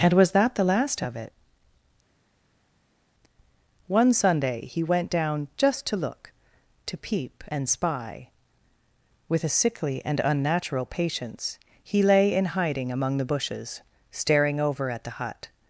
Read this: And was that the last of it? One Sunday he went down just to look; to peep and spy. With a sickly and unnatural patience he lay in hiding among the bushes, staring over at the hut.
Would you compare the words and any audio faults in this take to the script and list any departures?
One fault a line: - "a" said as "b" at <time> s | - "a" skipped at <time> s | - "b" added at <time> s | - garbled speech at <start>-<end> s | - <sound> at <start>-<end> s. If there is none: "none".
none